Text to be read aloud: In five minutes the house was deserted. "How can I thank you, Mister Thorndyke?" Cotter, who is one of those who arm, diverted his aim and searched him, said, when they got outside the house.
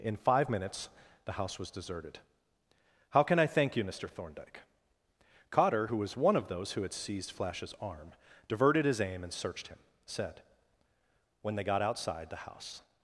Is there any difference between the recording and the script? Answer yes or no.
yes